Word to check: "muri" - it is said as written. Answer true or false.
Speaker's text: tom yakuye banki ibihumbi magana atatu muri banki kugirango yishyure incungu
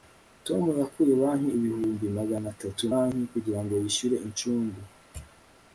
false